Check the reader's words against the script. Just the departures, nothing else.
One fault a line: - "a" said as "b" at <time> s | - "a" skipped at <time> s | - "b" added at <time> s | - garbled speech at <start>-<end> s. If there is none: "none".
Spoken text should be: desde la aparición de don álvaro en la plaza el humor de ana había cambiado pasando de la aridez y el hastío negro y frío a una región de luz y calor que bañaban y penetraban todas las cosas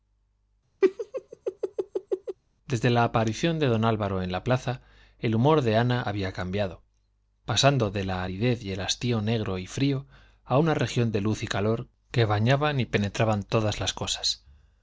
none